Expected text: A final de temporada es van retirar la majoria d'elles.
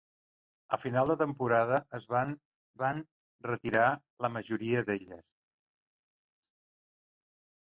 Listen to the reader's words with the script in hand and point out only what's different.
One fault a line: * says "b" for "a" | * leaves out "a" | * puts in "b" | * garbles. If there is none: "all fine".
* puts in "van"